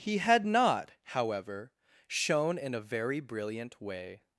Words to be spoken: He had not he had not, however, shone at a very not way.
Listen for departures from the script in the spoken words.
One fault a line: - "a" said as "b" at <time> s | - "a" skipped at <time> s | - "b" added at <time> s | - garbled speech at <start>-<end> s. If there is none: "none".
- "he had not" skipped at 0.9 s
- "at" said as "in" at 2.6 s
- "not" said as "brilliant" at 3.2 s